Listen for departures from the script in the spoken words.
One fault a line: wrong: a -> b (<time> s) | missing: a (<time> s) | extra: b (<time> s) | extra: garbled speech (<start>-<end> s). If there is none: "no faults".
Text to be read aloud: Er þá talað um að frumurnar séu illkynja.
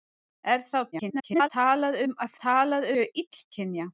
extra: garbled speech (0.9-1.5 s)
wrong: frumurnar -> talað (2.4 s)